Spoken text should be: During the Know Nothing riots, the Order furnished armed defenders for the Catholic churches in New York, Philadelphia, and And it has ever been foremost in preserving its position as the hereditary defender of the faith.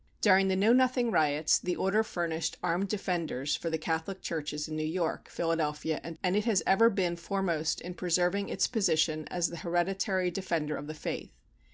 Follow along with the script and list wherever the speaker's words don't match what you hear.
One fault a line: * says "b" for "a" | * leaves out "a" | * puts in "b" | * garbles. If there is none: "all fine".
all fine